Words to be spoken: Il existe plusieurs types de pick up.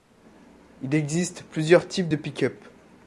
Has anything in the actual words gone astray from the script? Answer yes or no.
no